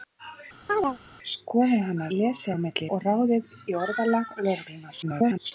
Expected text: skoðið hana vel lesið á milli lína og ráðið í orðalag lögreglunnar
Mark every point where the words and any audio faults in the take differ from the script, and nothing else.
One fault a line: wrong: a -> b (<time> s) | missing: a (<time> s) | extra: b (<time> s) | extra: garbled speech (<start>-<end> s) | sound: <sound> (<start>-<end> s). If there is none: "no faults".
sound: chirp (0.7-1.0 s)
missing: vel (2.1 s)
missing: lína (2.9 s)
extra: garbled speech (5.0-5.5 s)